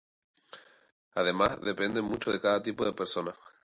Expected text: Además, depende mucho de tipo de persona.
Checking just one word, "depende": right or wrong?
right